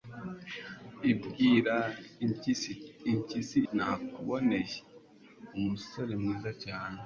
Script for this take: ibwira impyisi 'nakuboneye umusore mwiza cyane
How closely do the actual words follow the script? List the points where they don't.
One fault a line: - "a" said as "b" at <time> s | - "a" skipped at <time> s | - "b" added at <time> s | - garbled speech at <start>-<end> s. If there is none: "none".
none